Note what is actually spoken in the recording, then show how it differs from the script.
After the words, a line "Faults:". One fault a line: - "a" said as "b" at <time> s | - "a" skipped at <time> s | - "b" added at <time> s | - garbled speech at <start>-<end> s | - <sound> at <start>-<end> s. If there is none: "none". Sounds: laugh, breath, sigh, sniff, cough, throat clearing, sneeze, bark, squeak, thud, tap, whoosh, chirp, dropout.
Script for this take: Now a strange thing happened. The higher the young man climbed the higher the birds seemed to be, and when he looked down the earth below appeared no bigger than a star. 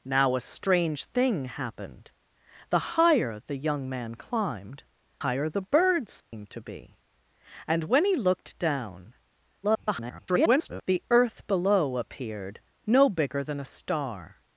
Now a strange thing happened. The higher the young man climbed higher the birds seemed to be, and when he looked down [garbled] the earth below appeared no bigger than a star.
Faults:
- "the" skipped at 4.8 s
- dropout at 6.2-6.3 s
- garbled speech at 9.6-10.8 s